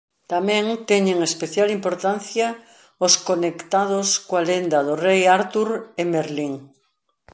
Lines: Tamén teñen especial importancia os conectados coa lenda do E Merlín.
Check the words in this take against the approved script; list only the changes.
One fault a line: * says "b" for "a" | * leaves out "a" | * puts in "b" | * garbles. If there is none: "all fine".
* puts in "Rei Artur"